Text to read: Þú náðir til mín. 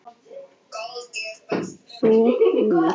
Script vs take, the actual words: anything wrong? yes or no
yes